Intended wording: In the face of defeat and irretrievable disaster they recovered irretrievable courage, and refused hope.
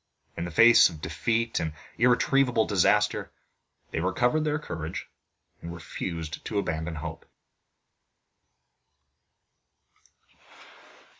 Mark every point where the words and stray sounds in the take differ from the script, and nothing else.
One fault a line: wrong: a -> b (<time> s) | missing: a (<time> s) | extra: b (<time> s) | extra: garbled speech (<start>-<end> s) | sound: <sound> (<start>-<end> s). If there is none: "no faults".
wrong: irretrievable -> their (4.5 s)
extra: to abandon (6.5 s)